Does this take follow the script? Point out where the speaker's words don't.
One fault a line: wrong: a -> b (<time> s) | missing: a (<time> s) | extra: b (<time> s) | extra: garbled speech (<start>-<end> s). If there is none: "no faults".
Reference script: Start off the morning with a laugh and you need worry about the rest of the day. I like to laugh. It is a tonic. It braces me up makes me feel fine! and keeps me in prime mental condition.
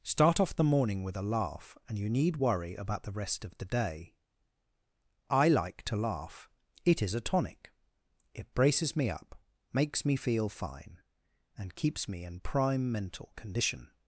no faults